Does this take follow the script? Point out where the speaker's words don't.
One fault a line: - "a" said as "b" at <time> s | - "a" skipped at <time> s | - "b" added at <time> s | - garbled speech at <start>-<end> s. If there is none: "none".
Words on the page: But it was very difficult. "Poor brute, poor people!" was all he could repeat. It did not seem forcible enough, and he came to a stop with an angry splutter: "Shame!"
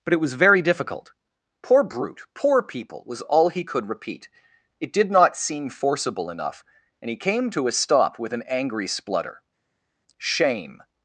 none